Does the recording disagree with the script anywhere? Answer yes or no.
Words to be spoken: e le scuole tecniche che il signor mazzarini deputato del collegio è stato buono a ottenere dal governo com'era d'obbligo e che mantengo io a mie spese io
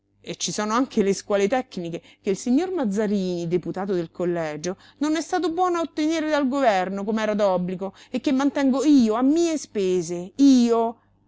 yes